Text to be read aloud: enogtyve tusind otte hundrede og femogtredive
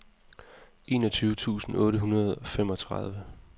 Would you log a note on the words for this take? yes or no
no